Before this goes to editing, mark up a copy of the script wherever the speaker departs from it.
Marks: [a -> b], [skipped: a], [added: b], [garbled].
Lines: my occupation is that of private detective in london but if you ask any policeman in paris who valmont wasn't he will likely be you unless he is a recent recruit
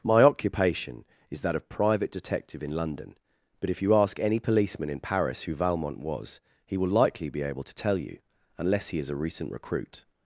my occupation is that of private detective in london but if you ask any policeman in paris who valmont [wasn't -> was] he will likely be [added: able to tell] you unless he is a recent recruit